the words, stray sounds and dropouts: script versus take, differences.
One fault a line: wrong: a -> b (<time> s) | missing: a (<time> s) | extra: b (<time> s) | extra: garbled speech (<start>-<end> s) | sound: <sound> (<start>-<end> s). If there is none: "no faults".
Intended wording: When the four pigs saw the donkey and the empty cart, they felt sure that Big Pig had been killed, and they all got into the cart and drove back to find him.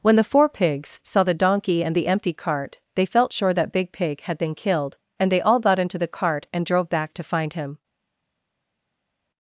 no faults